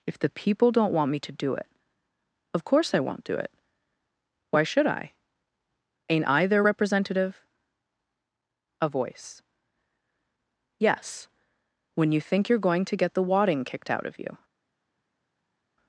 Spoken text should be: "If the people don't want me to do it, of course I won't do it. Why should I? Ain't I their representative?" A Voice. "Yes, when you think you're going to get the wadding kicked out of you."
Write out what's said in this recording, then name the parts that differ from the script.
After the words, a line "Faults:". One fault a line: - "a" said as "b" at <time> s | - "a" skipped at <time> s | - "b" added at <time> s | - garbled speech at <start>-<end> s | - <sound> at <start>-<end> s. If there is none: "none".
"If the people don't want me to do it, of course I won't do it. Why should I? Ain't I their representative?" A Voice. "Yes, when you think you're going to get the wadding kicked out of you."
Faults:
none